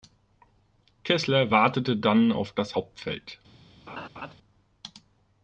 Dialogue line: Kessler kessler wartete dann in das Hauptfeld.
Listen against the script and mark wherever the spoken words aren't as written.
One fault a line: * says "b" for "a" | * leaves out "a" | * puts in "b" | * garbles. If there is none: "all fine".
* leaves out "kessler"
* says "auf" for "in"